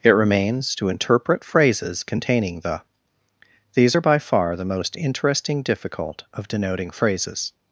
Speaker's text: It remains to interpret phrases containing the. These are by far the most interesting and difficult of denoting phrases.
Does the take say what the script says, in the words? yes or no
no